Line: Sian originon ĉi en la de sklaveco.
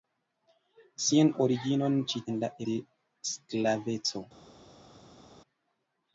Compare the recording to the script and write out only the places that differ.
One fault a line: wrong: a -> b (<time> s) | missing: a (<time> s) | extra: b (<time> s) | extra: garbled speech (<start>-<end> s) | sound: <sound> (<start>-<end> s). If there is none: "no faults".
no faults